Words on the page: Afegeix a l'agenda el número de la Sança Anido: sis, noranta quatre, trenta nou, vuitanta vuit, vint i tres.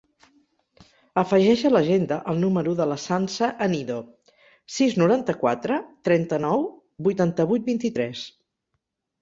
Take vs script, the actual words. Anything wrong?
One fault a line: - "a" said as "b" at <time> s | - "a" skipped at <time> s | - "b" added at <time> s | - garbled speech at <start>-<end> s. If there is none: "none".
none